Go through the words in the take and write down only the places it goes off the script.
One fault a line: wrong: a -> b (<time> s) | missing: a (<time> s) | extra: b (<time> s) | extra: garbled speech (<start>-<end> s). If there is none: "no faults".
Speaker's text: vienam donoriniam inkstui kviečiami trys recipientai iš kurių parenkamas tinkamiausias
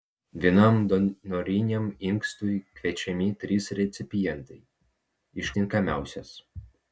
missing: kurių parenkamas (5.5 s)